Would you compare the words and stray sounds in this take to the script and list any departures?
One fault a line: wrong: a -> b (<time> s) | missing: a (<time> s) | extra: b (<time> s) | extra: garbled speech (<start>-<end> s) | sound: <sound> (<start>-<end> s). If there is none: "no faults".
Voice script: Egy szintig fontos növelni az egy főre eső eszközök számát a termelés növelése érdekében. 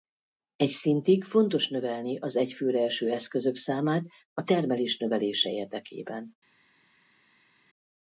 no faults